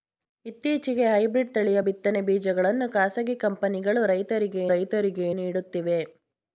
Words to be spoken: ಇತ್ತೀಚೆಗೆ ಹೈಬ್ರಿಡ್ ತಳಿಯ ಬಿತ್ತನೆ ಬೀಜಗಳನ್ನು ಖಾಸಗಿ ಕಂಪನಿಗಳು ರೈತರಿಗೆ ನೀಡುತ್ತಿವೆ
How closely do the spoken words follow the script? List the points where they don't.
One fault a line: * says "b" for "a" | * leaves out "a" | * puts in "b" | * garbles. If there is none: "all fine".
* puts in "ರೈತರಿಗೆ"